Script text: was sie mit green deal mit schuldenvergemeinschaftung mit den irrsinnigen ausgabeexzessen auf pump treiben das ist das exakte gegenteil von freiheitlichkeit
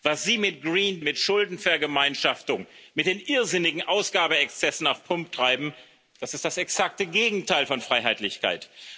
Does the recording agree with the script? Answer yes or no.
no